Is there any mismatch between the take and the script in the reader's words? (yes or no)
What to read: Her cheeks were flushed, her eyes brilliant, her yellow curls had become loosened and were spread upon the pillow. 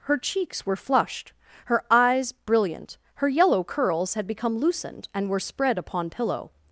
yes